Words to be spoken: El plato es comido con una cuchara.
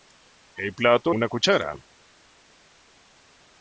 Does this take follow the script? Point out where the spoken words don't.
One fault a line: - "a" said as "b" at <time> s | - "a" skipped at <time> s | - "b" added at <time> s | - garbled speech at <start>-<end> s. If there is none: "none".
- "es comido con" skipped at 1.1 s